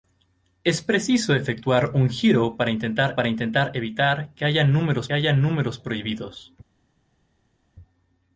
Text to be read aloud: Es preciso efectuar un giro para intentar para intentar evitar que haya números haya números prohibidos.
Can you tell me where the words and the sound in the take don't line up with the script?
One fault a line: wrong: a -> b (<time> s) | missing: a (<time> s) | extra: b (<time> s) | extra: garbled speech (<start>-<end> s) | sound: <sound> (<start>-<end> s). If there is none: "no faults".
no faults